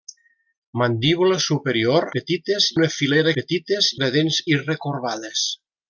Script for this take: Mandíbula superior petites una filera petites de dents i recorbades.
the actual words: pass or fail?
pass